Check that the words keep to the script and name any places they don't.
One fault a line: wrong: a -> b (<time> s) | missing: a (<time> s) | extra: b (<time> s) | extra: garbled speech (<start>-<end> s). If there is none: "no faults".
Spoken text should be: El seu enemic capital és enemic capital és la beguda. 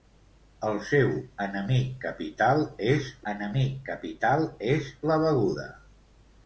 no faults